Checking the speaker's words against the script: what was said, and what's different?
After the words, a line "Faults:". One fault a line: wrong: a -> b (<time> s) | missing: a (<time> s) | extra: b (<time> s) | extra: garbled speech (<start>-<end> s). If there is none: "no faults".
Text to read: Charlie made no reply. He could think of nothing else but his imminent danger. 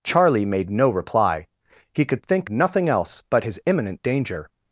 Charlie made no reply. He could think nothing else but his imminent danger.
Faults:
missing: of (2.5 s)